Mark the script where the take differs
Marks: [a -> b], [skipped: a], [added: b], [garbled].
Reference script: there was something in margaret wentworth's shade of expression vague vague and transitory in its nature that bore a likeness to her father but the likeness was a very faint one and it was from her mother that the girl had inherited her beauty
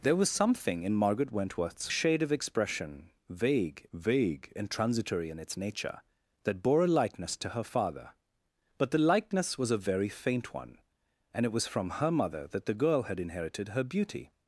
there was something in margaret wentworth's shade of expression vague vague and transitory in its nature that bore a likeness to her father but the likeness was a very faint one and it was from her mother that the girl had inherited her beauty